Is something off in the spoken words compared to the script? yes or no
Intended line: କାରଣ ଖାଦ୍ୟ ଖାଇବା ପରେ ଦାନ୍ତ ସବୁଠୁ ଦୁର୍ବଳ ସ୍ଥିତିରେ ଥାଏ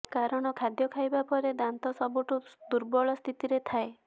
no